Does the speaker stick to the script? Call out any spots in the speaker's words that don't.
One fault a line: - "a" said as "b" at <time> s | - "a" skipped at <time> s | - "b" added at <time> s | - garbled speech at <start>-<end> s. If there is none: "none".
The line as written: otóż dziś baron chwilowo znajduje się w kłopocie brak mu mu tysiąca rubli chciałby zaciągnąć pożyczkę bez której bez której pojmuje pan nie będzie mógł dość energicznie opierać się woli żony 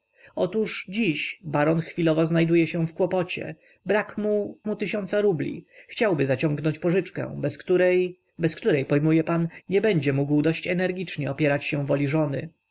none